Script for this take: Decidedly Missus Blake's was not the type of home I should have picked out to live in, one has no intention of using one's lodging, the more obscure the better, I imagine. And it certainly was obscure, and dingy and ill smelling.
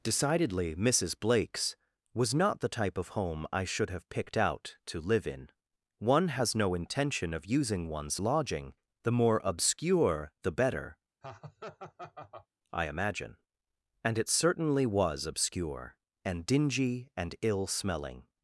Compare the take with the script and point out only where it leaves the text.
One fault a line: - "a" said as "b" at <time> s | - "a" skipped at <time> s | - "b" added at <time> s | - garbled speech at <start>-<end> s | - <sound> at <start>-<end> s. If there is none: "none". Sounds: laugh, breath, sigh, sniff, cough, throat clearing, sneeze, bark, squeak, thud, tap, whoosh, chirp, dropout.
- laugh at 11.2-12.5 s